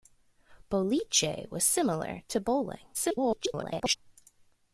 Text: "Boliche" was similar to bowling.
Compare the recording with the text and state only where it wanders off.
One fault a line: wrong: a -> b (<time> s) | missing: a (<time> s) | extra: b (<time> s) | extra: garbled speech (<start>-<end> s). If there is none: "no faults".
extra: garbled speech (2.9-4.0 s)